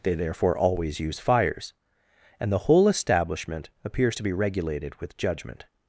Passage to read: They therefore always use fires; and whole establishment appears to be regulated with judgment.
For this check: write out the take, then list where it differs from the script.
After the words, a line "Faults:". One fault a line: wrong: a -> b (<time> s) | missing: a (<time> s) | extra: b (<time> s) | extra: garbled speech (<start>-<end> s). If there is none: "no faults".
They therefore always use fires; and the whole establishment appears to be regulated with judgment.
Faults:
extra: the (2.5 s)